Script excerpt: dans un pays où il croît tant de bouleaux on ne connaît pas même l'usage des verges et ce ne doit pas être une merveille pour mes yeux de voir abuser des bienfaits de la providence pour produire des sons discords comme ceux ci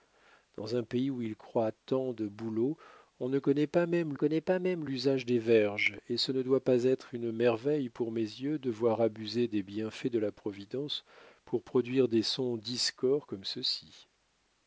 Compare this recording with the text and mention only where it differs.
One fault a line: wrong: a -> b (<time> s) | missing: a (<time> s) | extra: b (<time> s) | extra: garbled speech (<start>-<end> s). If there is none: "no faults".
extra: connaît pas même (4.1 s)